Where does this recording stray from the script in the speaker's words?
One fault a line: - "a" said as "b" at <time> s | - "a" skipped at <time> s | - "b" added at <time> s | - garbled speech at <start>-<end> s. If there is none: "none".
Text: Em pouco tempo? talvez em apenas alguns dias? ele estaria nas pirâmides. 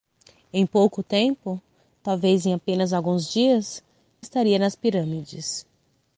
- "ele" skipped at 3.8 s